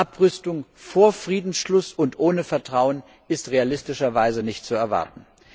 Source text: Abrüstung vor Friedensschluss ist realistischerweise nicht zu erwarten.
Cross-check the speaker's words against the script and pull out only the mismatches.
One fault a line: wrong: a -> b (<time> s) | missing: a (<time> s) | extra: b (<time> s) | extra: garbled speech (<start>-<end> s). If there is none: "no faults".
extra: und ohne Vertrauen (1.9 s)